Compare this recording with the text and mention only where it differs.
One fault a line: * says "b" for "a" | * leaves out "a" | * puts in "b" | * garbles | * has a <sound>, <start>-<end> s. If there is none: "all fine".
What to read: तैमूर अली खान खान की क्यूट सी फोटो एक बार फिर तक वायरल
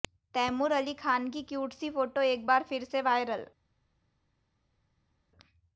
* leaves out "खान"
* says "से" for "तक"